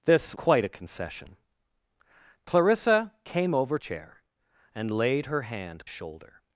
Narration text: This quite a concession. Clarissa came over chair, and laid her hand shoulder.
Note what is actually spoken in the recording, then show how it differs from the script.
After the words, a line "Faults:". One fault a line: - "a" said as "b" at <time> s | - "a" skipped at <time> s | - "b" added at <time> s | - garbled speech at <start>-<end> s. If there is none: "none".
This quite a concession. Clarissa came over chair, and laid her hand shoulder.
Faults:
none